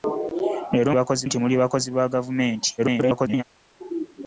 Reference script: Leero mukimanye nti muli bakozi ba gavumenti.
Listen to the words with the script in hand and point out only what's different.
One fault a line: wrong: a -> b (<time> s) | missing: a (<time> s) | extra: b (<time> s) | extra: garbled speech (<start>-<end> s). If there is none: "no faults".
wrong: mukimanye -> bakozi (1.0 s)
extra: garbled speech (2.8-3.4 s)